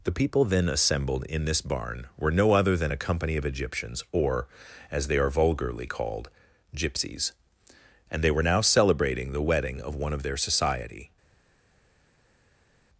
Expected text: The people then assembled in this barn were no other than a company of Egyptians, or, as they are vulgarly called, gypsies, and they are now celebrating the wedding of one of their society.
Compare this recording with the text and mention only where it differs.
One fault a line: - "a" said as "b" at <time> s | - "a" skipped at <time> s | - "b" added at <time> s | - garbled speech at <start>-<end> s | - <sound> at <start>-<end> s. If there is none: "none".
- "are" said as "were" at 8.3 s